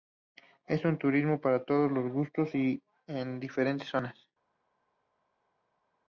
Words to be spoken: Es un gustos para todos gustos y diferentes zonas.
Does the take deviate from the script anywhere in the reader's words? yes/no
yes